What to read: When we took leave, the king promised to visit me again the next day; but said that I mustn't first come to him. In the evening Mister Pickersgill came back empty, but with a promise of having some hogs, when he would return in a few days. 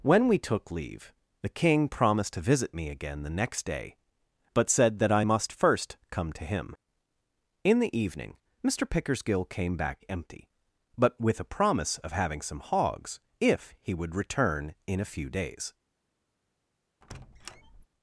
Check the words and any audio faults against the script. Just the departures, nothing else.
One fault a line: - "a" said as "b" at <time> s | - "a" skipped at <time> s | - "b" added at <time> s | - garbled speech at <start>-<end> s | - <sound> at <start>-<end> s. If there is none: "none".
- "mustn't" said as "must" at 5.2 s
- "when" said as "if" at 13.4 s
- squeak at 17.0-17.9 s